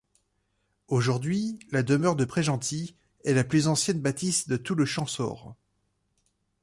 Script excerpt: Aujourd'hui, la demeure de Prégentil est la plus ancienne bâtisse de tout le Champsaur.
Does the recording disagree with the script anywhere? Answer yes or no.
no